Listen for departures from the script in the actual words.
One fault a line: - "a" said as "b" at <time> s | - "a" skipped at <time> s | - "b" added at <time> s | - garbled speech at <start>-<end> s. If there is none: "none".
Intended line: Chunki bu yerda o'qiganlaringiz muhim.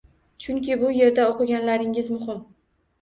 none